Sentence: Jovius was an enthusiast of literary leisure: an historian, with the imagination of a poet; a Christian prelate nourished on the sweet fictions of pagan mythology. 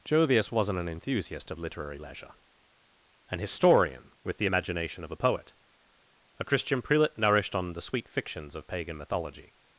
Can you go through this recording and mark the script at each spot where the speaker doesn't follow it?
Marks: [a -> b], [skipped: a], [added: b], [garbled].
Jovius [was -> wasn't] an enthusiast of literary leisure: an historian, with the imagination of a poet; a Christian prelate nourished on the sweet fictions of pagan mythology.